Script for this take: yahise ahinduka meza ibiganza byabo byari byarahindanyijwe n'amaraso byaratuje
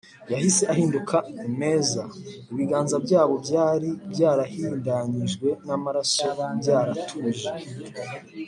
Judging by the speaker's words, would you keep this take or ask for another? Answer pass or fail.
pass